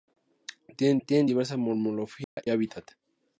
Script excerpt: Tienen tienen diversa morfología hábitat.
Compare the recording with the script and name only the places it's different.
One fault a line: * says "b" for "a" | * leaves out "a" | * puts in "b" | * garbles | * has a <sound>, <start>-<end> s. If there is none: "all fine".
* has a dropout, 2.2-2.4 s